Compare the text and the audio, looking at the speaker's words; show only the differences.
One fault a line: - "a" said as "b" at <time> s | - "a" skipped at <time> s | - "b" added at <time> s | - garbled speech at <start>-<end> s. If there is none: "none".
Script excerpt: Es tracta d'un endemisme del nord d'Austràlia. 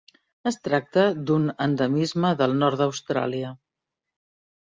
none